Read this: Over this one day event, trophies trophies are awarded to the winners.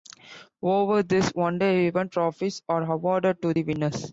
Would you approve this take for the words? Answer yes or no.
no